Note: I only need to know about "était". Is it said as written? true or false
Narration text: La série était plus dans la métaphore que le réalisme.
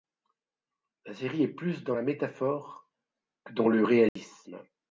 false